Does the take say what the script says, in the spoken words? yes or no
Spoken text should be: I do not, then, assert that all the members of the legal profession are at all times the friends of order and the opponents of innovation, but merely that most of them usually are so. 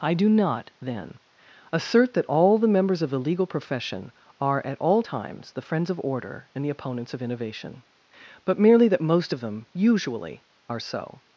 yes